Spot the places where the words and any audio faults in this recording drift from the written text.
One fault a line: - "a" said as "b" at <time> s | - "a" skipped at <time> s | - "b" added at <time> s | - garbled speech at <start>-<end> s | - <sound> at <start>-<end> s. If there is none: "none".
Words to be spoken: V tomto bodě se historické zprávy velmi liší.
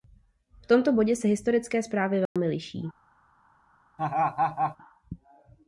- dropout at 2.3-2.4 s
- laugh at 4.0-4.8 s